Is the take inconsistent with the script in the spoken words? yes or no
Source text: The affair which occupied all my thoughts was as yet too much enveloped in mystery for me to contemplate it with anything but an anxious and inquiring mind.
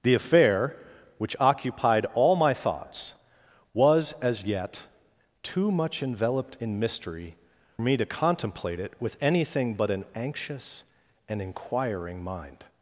yes